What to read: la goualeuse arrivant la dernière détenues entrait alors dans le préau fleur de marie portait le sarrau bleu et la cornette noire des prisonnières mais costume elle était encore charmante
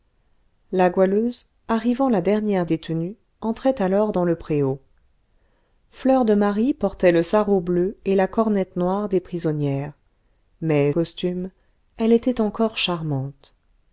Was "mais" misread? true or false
false